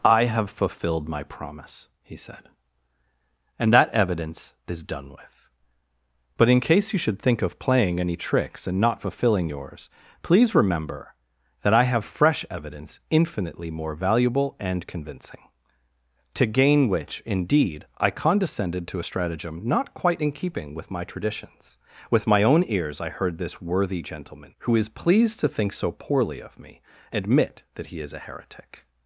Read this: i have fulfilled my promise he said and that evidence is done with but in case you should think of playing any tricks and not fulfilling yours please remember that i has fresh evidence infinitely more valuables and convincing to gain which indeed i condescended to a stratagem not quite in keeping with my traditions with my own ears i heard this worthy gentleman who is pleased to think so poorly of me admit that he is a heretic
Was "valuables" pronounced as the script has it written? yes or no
no